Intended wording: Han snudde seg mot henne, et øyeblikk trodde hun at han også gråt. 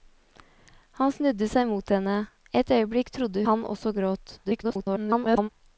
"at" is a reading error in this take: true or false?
true